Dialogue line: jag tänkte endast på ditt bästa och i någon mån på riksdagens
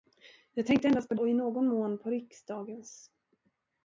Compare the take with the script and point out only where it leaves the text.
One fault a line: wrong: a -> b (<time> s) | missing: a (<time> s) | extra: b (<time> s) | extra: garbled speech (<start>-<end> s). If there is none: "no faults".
missing: ditt bästa (1.1 s)